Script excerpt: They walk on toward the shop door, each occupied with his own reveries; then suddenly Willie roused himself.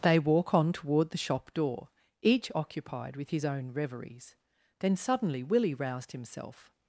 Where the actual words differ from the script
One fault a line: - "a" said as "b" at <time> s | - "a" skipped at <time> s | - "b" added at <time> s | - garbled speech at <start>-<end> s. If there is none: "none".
none